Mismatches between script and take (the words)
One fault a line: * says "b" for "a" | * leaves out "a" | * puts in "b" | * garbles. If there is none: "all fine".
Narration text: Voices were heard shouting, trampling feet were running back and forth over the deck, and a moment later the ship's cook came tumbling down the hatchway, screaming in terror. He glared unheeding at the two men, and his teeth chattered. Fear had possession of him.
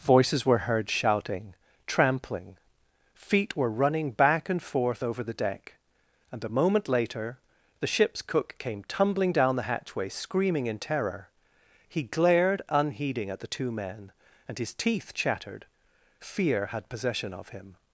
all fine